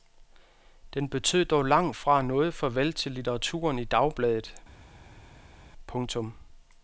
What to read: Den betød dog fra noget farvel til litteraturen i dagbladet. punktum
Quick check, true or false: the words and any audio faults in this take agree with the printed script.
false